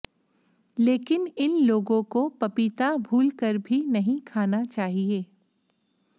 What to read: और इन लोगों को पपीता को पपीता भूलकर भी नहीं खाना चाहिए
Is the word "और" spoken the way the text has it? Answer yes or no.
no